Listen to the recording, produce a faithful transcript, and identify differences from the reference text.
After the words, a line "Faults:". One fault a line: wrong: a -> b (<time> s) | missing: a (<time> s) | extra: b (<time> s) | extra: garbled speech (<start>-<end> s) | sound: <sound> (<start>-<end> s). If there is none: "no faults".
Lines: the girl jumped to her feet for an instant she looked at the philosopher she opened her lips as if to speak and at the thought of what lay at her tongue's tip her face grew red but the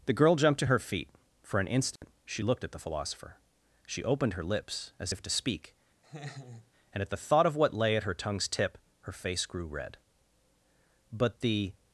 the girl jumped to her feet for an instant she looked at the philosopher she opened her lips as if to speak and at the thought of what lay at her tongue's tip her face grew red but the
Faults:
sound: dropout (2.0-2.0 s)
sound: laugh (6.0-6.7 s)